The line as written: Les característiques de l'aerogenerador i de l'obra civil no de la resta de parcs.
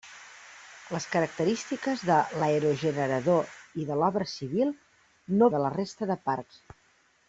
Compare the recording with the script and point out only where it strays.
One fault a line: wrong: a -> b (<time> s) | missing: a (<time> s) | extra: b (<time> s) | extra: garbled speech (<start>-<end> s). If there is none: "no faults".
no faults